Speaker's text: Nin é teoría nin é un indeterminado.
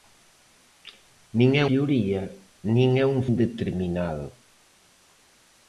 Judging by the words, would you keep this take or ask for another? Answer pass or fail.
pass